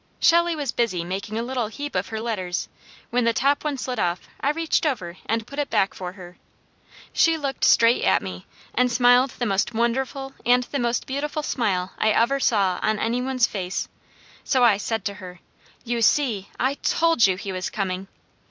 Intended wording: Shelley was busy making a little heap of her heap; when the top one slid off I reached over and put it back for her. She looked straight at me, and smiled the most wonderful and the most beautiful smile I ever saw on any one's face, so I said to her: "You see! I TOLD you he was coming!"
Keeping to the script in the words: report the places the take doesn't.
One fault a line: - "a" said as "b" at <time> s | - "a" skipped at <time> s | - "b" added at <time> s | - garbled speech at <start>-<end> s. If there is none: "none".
- "heap" said as "letters" at 2.2 s